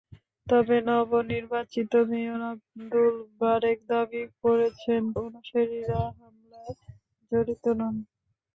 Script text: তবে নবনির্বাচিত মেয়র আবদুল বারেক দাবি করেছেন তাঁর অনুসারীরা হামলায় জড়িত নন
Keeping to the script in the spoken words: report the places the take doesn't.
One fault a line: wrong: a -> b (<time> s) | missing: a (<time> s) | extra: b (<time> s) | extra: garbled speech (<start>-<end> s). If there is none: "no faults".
missing: তাঁর (5.0 s)